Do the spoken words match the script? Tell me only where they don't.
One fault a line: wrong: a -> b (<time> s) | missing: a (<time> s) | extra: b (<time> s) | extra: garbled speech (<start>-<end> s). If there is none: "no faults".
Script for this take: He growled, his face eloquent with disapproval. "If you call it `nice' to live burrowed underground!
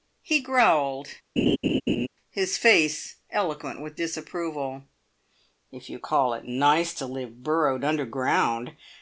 no faults